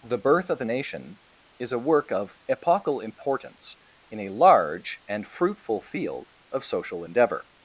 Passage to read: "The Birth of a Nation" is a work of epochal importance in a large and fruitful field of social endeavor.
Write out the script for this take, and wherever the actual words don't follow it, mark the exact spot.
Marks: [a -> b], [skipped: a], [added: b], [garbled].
"The Birth of a Nation" is a work of epochal importance in a large and fruitful field of social endeavor.